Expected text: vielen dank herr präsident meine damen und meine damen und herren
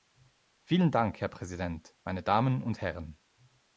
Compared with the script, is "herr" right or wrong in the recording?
right